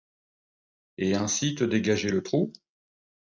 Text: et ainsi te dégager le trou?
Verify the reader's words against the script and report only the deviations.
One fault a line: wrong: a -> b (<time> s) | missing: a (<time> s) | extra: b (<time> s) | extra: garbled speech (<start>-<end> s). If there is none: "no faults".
no faults